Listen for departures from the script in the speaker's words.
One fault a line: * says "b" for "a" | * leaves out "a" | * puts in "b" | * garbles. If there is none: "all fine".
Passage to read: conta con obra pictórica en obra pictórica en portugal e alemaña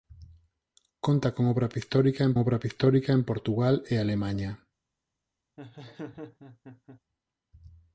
all fine